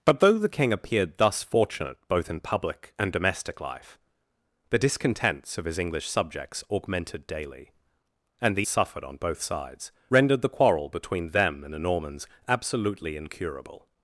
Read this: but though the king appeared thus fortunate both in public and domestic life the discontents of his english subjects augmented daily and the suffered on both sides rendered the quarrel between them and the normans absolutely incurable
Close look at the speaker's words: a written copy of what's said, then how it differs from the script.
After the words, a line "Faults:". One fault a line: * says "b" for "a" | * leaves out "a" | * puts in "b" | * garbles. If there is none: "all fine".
but though the king appeared thus fortunate both in public and domestic life the discontents of his english subjects augmented daily and the suffered on both sides rendered the quarrel between them and the normans absolutely incurable
Faults:
all fine